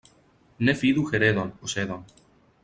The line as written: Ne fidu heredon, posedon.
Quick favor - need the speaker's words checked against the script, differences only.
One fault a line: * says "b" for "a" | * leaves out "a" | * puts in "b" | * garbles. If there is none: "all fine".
all fine